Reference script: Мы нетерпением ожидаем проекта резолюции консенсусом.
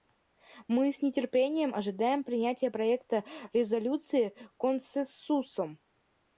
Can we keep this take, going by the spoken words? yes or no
no